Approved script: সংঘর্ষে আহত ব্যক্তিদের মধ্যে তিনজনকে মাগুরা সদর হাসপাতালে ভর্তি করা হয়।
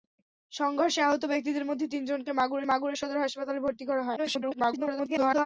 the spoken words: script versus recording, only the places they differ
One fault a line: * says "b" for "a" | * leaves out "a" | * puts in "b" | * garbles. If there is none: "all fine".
* puts in "মাগুরা"
* garbles